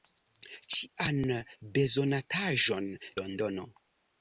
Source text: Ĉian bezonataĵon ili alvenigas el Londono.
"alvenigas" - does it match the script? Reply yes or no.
no